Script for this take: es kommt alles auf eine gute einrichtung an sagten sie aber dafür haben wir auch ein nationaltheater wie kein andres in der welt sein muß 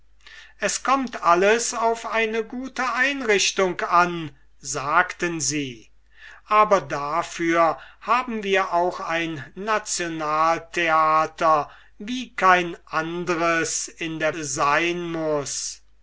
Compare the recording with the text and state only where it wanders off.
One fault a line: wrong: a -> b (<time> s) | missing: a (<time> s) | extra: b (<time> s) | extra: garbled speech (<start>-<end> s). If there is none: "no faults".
missing: welt (14.4 s)